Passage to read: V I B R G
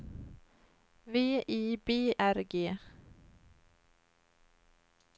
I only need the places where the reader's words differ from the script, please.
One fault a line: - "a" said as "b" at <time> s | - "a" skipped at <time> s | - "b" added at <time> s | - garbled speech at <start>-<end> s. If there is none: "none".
none